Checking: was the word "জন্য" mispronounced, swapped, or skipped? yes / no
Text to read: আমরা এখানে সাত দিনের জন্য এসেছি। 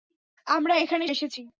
yes